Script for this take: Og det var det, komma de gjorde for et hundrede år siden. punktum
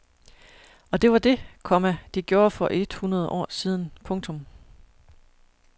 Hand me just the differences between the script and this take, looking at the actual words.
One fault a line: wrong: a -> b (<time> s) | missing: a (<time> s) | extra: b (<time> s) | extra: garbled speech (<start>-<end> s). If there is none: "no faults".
no faults